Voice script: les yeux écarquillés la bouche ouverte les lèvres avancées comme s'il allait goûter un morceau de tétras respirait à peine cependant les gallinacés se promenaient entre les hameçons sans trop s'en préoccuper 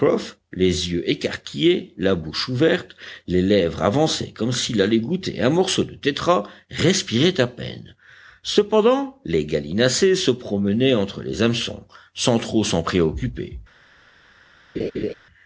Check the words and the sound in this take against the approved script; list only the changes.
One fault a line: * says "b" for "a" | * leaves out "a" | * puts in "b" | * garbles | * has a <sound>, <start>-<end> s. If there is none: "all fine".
* has a laugh, 14.7-15.1 s